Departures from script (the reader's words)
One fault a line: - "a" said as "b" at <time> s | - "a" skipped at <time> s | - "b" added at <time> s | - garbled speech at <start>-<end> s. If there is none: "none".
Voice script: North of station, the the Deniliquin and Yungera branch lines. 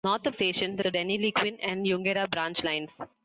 none